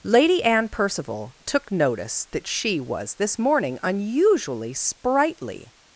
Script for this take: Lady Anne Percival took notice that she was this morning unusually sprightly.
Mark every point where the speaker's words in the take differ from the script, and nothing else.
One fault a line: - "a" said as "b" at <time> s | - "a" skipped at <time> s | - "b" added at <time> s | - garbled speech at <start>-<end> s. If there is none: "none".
none